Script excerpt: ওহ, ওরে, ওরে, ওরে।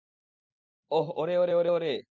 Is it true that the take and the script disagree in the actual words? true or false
true